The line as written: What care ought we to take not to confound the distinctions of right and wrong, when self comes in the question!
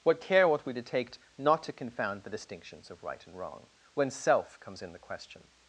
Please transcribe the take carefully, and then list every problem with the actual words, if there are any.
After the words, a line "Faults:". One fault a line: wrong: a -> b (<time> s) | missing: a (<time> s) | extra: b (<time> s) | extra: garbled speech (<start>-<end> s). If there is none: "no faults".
What care ought we to take not to confound the distinctions of right and wrong, when self comes in the question!
Faults:
no faults